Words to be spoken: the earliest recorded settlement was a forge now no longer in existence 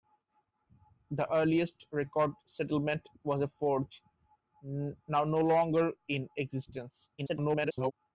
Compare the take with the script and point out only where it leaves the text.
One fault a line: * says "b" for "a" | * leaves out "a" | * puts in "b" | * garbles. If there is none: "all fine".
* garbles